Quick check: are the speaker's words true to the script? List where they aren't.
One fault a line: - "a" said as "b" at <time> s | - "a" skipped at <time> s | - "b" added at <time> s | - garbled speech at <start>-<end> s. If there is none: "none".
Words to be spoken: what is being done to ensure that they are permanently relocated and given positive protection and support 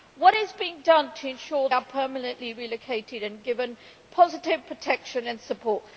- "that they" skipped at 1.7 s